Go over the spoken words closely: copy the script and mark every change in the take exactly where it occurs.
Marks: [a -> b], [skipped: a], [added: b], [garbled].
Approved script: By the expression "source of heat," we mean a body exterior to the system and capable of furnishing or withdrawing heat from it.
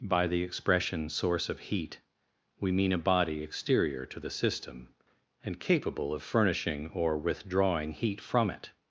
By the expression "source of heat," we mean a body exterior to the system and capable of furnishing or withdrawing heat from it.